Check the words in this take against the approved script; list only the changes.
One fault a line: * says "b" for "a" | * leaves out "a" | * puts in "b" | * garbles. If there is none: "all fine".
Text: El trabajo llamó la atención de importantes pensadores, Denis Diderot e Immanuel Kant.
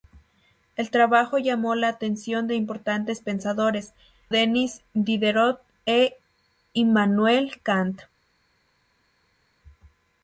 all fine